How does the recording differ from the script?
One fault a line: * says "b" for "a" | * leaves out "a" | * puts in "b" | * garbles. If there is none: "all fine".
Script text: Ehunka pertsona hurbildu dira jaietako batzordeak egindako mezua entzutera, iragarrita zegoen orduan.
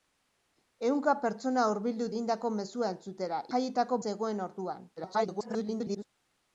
* leaves out "dira jaietako batzordeak"
* says "jaietako" for "iragarrita"
* garbles